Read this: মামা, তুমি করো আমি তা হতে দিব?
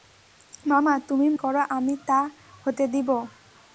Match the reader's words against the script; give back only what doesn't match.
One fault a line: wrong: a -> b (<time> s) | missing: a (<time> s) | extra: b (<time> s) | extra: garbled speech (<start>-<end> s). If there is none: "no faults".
no faults